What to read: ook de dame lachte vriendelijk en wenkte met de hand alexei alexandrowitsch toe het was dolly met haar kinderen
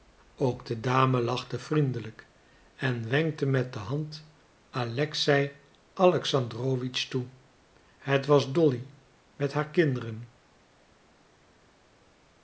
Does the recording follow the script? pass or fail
pass